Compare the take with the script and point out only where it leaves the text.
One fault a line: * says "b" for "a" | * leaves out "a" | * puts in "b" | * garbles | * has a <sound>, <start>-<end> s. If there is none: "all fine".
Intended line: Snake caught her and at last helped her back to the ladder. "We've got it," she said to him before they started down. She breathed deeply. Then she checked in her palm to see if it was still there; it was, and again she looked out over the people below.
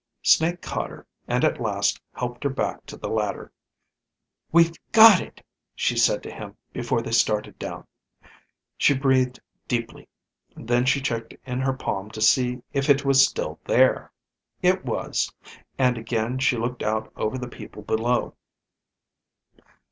all fine